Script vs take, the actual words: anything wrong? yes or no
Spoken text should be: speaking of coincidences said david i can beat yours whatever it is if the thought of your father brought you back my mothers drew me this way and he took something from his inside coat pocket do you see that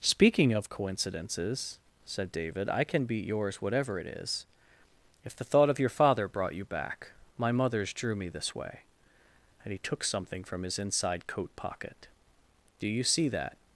no